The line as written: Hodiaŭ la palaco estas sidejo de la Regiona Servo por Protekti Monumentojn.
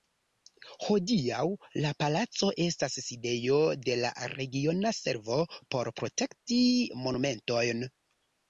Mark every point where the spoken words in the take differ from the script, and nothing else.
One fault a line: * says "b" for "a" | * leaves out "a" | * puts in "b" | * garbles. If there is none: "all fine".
all fine